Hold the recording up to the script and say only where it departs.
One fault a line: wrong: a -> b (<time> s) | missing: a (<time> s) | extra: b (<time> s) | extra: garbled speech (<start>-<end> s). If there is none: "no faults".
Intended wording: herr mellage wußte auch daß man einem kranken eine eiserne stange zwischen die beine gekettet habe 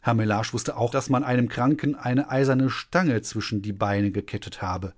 no faults